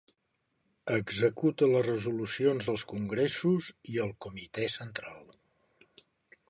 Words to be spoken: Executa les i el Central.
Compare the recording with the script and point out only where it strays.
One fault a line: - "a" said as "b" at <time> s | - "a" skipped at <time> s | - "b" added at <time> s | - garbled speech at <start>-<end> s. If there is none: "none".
- "resolucions dels congressos" added at 1.9 s
- "Comitè" added at 4.3 s